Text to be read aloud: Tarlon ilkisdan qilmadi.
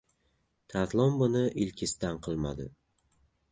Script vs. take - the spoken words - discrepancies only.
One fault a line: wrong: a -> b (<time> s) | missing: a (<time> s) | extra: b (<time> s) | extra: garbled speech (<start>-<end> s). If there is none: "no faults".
extra: buni (1.2 s)